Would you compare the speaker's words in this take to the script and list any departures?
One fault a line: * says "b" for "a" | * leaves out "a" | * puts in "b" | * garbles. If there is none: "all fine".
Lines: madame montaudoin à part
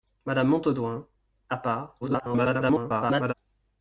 * garbles